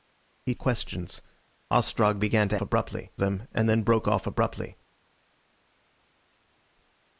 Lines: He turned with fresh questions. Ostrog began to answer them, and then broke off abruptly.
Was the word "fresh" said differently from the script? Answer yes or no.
yes